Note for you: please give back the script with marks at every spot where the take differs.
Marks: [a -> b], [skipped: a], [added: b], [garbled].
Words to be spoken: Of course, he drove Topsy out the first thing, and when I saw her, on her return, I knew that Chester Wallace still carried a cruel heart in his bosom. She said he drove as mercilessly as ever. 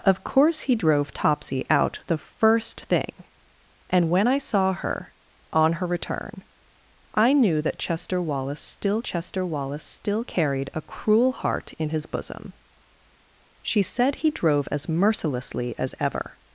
Of course, he drove Topsy out the first thing, and when I saw her, on her return, I knew that Chester Wallace still [added: Chester Wallace still] carried a cruel heart in his bosom. She said he drove as mercilessly as ever.